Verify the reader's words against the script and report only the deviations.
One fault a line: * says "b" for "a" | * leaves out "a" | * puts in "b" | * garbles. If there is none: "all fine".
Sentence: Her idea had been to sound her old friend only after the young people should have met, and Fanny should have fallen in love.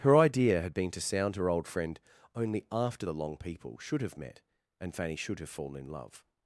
* says "long" for "young"